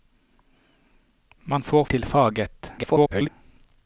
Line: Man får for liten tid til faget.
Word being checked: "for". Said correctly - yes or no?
no